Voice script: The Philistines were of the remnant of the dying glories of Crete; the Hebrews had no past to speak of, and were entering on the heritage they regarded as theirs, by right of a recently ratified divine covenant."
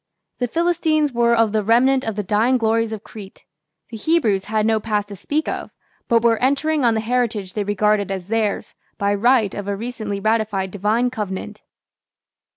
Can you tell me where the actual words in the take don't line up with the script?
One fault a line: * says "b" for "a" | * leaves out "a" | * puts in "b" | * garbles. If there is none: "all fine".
* says "but" for "and"